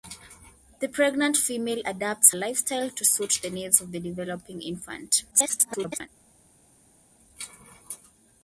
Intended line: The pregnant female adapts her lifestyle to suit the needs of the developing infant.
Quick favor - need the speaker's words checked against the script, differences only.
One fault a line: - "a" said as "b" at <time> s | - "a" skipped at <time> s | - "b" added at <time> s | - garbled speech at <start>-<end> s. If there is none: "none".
- "her" skipped at 2.3 s
- garbled speech at 5.3-6.1 s